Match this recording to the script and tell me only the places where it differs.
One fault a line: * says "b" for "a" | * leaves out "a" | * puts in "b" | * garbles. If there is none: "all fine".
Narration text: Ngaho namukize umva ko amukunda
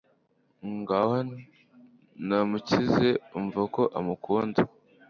all fine